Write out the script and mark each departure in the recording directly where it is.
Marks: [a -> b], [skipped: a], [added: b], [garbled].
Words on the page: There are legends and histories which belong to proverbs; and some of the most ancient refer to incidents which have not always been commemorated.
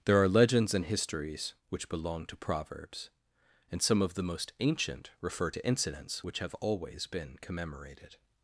There are legends and histories which belong to proverbs; and some of the most ancient refer to incidents which have [skipped: not] always been commemorated.